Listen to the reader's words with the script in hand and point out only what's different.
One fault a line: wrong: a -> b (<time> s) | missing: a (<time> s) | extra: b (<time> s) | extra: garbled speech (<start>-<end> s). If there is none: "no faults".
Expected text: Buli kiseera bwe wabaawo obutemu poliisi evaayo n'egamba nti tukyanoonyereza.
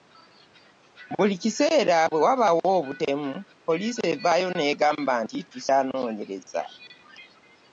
no faults